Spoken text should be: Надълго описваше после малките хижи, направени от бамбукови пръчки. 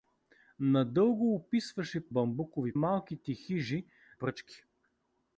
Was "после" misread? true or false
true